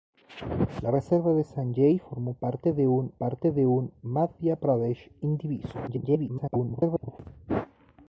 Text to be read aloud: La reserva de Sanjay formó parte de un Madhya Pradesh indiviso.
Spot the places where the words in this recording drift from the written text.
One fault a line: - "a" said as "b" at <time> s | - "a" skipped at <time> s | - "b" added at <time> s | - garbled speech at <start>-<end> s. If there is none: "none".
- "parte de un" added at 3.1 s
- garbled speech at 5.9-7.2 s